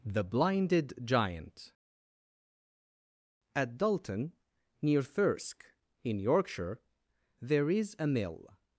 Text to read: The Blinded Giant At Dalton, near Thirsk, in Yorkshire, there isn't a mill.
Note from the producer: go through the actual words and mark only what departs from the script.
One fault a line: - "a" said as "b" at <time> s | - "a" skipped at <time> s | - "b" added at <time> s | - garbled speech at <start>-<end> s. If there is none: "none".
- "isn't" said as "is" at 7.7 s